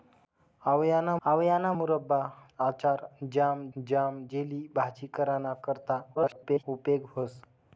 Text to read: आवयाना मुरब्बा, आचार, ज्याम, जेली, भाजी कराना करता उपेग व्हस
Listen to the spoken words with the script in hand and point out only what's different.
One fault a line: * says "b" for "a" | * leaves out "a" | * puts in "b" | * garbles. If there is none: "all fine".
* puts in "आवयाना"
* puts in "ज्याम"
* garbles